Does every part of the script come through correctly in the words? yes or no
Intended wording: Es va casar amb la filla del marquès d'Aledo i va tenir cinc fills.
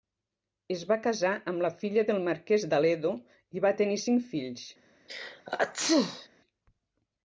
yes